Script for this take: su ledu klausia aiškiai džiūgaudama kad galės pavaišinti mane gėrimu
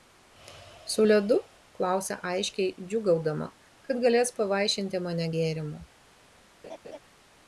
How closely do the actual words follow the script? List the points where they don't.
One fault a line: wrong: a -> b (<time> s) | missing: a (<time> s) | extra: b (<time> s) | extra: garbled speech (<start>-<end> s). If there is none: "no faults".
no faults